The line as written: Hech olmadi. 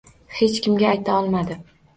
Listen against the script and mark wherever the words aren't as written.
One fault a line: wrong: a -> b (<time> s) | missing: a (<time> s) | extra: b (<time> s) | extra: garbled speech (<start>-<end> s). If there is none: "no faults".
extra: kimga ayta (0.7 s)